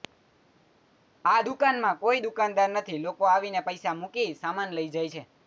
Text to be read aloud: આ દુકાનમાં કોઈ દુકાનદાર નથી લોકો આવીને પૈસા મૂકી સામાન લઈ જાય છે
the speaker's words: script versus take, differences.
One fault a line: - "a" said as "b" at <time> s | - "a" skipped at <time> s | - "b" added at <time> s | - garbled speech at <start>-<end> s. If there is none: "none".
none